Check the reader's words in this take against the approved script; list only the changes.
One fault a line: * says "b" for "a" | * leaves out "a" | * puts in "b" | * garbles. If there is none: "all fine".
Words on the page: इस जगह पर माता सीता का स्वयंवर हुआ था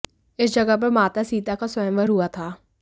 all fine